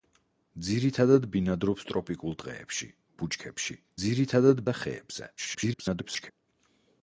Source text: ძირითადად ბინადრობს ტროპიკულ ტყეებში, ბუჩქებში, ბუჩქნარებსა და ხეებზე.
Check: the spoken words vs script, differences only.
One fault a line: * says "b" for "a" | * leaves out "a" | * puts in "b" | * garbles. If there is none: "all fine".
* says "ძირითადად" for "ბუჩქნარებსა"
* garbles